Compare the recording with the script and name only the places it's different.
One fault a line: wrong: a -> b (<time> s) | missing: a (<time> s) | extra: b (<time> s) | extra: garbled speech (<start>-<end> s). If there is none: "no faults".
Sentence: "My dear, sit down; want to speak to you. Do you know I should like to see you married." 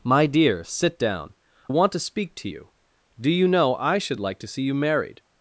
no faults